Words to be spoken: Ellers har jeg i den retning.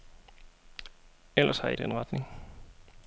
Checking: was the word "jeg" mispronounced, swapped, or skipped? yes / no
no